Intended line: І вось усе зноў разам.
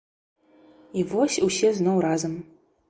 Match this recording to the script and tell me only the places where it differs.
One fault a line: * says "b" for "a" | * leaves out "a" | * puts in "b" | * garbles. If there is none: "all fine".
all fine